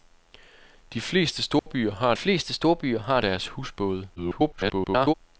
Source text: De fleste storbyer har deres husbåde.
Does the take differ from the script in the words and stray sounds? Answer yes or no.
yes